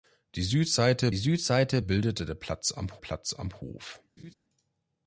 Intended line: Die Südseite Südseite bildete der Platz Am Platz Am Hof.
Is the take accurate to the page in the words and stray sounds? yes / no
no